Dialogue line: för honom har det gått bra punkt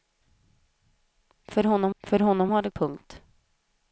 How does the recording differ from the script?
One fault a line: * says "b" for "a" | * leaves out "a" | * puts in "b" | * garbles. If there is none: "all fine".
* puts in "för honom"
* leaves out "gått bra"